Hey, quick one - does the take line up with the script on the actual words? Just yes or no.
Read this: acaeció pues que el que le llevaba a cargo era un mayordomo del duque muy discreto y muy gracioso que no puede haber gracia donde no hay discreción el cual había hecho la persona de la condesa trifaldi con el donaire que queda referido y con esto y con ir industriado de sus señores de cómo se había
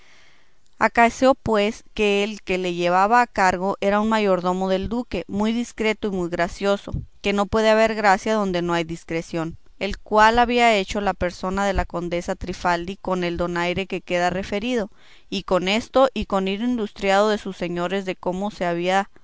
yes